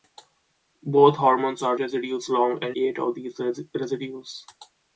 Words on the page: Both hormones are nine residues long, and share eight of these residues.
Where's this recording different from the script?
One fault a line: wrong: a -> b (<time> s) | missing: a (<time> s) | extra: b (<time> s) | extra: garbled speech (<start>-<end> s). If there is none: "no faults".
missing: nine (1.8 s)
missing: share (2.8 s)